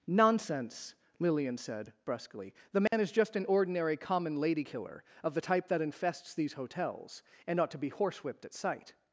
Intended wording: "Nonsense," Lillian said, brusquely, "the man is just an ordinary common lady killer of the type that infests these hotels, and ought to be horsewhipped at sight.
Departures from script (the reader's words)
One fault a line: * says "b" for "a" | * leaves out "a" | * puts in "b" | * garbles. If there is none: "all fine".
all fine